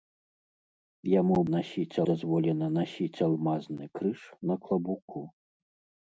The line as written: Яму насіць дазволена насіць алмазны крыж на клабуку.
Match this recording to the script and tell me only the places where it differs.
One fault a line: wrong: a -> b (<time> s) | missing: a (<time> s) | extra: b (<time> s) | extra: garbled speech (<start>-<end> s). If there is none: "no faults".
no faults